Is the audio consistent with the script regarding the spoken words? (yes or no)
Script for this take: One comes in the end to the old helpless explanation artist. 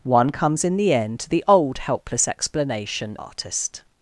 yes